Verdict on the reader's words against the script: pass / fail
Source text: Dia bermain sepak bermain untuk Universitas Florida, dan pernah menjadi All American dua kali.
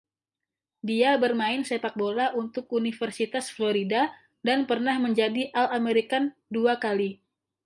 fail